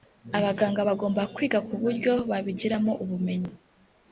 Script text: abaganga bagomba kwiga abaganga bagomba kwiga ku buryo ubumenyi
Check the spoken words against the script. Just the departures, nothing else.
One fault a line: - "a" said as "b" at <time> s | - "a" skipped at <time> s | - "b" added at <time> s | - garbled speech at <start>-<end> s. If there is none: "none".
- "abaganga bagomba kwiga" skipped at 1.6 s
- "babigiramo" added at 2.3 s